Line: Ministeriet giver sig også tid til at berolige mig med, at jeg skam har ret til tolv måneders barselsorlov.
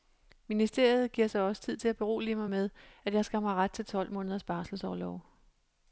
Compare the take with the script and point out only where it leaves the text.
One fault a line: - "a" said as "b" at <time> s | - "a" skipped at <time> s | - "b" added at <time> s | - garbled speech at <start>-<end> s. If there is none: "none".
none